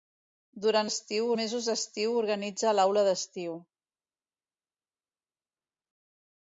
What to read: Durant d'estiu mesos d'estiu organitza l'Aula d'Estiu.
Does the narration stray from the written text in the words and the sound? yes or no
no